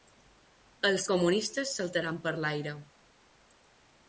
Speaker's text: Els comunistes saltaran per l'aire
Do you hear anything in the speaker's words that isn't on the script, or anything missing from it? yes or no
no